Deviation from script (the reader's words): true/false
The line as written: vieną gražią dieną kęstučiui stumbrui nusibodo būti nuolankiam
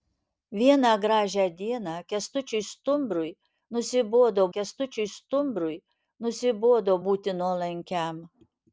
true